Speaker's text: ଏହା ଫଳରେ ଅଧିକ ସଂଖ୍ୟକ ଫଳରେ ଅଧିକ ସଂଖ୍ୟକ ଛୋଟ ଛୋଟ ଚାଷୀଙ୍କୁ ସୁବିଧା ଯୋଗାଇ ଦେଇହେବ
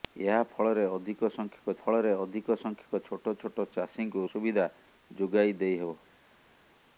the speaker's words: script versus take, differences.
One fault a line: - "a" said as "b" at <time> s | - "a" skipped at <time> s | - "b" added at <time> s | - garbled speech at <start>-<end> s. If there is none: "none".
none